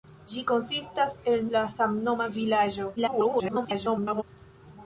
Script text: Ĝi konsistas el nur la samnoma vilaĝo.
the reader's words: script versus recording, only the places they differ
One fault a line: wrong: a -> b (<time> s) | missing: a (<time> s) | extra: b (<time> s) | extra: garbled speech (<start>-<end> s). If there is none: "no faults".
missing: nur (1.4 s)
extra: garbled speech (3.0-4.2 s)